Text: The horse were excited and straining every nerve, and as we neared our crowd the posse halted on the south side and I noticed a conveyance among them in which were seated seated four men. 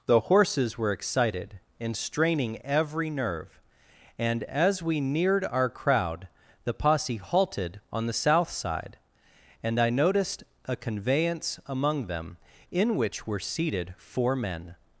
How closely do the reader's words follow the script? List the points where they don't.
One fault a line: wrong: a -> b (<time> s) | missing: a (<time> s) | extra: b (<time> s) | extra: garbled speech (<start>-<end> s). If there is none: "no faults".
wrong: horse -> horses (0.2 s)
missing: seated (13.9 s)